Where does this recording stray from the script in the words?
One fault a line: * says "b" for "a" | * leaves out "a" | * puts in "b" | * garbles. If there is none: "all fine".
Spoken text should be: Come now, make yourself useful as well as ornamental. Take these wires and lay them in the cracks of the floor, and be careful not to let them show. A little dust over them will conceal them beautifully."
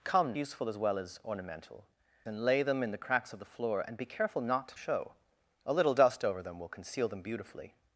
* leaves out "now make yourself"
* leaves out "Take these wires"
* leaves out "let them"